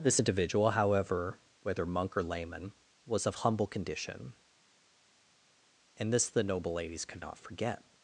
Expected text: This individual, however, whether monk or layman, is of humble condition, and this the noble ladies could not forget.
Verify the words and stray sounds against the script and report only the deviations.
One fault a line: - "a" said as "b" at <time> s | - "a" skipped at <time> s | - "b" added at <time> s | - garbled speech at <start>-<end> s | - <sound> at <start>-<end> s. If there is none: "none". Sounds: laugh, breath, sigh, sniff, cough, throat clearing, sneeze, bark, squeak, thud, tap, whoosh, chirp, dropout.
- "is" said as "was" at 3.1 s